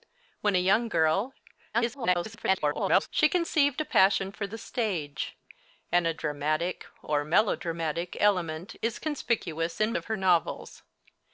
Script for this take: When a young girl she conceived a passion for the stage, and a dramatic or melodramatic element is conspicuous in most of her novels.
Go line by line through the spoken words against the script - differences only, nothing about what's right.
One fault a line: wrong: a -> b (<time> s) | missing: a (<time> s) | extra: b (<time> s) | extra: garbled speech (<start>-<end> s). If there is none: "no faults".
extra: garbled speech (1.7-3.1 s)
missing: most (9.9 s)